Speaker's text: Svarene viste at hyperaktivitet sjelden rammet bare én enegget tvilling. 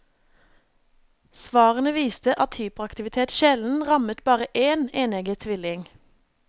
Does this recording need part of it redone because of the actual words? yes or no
no